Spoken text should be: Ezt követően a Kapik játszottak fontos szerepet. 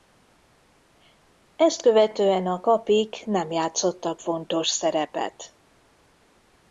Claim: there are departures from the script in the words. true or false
true